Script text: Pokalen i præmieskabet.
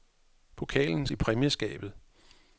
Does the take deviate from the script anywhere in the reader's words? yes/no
no